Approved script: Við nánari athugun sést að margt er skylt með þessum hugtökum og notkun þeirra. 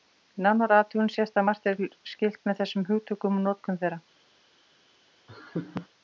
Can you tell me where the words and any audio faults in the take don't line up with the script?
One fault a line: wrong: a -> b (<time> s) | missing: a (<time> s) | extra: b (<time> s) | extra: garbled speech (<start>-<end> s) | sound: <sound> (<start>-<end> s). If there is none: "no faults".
sound: laugh (5.3-5.9 s)